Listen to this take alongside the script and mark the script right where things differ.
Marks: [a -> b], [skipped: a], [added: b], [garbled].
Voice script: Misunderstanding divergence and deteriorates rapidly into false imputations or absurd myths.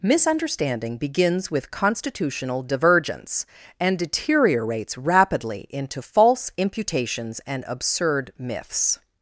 Misunderstanding [added: begins with constitutional] divergence and deteriorates rapidly into false imputations [or -> and] absurd myths.